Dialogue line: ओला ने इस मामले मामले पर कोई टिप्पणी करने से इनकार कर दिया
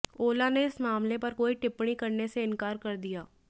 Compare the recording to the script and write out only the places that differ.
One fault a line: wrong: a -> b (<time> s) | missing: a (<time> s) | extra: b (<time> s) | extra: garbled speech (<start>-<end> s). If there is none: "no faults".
missing: मामले (1.2 s)